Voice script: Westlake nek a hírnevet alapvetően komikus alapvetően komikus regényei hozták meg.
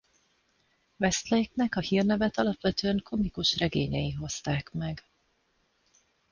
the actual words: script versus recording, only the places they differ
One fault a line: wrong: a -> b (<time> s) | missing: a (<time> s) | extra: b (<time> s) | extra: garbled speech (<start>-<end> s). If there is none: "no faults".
missing: alapvetően komikus (3.6 s)